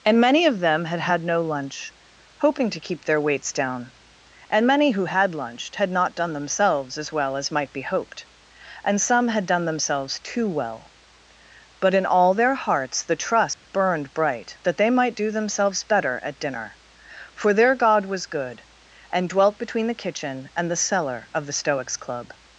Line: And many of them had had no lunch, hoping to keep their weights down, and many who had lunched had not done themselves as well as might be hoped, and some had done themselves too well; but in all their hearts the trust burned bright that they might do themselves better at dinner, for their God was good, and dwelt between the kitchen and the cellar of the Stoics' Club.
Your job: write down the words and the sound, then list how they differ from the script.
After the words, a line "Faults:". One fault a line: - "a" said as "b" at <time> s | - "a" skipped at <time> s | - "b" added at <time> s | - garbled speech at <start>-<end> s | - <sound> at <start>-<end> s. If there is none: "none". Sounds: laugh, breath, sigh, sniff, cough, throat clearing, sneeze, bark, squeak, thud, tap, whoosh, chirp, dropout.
And many of them had had no lunch, hoping to keep their weights down, and many who had lunched had not done themselves as well as might be hoped, and some had done themselves too well; but in all their hearts the trust burned bright that they might do themselves better at dinner, for their God was good, and dwelt between the kitchen and the cellar of the Stoics' Club.
Faults:
- dropout at 13.5-13.6 s